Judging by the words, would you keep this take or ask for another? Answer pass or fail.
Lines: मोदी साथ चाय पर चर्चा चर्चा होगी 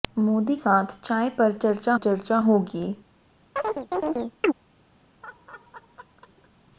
pass